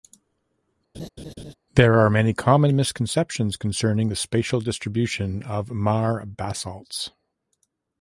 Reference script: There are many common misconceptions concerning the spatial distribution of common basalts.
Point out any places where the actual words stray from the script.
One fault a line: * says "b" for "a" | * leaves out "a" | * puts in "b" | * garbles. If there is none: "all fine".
* says "mare" for "common"